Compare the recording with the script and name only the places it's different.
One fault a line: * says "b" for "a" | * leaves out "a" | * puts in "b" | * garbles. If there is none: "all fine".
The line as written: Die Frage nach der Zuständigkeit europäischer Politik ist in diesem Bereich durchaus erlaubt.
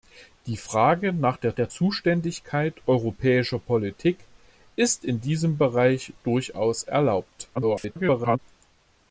* puts in "der"
* garbles